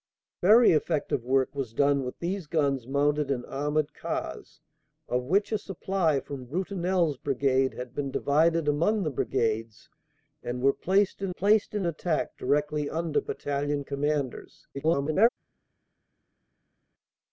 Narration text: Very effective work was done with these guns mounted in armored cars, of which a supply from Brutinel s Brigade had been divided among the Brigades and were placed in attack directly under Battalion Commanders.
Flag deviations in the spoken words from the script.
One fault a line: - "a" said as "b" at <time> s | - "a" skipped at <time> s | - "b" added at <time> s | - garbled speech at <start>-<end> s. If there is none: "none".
- "placed in" added at 11.3 s
- garbled speech at 14.7-15.3 s